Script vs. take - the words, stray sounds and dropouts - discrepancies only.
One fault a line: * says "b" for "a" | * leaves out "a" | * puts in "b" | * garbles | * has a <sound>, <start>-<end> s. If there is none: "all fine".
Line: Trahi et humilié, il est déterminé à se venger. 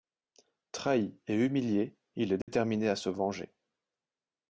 * has a dropout, 2.4-2.5 s